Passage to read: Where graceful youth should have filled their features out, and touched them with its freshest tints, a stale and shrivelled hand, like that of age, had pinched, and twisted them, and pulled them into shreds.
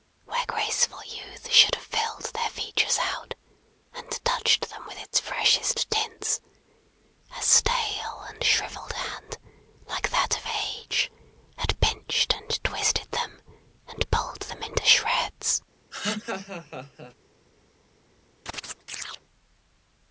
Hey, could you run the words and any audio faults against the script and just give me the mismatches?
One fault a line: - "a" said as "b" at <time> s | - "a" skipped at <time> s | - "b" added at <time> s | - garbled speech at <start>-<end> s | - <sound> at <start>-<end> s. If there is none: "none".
- laugh at 15.9-17.1 s
- chirp at 18.5-19.2 s